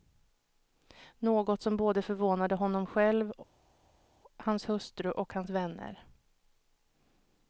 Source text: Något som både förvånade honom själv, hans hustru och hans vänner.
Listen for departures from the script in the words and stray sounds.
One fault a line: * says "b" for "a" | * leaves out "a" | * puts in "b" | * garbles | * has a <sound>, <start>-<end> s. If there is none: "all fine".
all fine